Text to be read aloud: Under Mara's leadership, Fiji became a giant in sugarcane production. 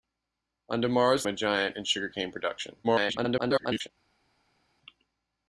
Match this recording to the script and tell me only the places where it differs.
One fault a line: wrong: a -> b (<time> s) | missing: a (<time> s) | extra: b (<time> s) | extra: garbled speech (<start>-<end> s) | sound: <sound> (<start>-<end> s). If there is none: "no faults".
missing: leadership Fiji became (1.3 s)
extra: garbled speech (2.8-3.9 s)